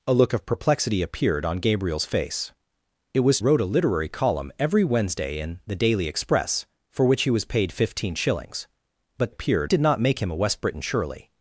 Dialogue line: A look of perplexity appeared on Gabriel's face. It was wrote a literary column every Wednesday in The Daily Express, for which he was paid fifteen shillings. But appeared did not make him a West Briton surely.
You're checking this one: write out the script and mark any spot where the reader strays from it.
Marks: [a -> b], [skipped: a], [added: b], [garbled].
A look of perplexity appeared on Gabriel's face. It was wrote a literary column every Wednesday in The Daily Express, for which he was paid fifteen shillings. But appeared did not make him a West Briton surely.